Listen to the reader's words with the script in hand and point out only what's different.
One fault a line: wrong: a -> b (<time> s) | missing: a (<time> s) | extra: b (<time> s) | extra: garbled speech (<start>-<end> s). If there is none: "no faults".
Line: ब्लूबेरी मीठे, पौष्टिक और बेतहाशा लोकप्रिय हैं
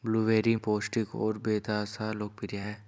missing: मीठे (0.6 s)